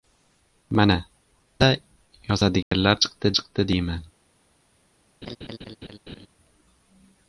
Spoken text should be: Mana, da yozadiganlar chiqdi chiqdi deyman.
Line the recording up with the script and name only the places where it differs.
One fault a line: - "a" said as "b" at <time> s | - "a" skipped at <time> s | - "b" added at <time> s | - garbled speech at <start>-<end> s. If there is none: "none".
none